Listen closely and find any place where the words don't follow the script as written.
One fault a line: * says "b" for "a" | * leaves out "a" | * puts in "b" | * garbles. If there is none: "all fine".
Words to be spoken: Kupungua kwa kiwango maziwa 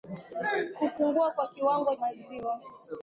all fine